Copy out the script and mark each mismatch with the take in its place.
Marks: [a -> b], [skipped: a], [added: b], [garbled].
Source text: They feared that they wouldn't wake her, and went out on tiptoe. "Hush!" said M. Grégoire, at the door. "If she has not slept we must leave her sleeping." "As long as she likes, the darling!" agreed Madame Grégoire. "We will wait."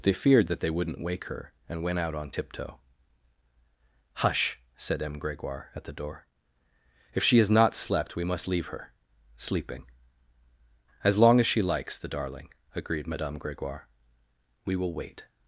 They feared that they wouldn't wake her, and went out on tiptoe. "Hush!" said M. Grégoire, at the door. "If she has not slept we must leave her sleeping." "As long as she likes, the darling!" agreed Madame Grégoire. "We will wait."